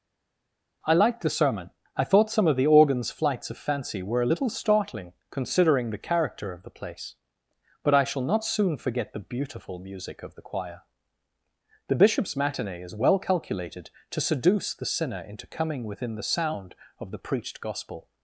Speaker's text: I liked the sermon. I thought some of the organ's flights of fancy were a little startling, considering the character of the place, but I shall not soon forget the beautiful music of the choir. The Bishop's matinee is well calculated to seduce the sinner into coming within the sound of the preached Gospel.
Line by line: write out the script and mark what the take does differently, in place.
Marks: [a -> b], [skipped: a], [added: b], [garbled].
I liked the sermon. I thought some of the organ's flights of fancy were a little startling, considering the character of the place, but I shall not soon forget the beautiful music of the choir. The Bishop's matinee is well calculated to seduce the sinner into coming within the sound of the preached Gospel.